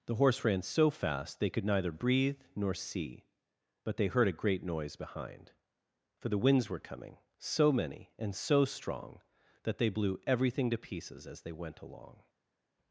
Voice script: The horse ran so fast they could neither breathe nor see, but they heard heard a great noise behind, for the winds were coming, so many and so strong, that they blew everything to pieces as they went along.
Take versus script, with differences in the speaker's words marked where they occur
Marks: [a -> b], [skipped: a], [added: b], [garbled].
The horse ran so fast they could neither breathe nor see, but they heard [skipped: heard] a great noise behind, for the winds were coming, so many and so strong, that they blew everything to pieces as they went along.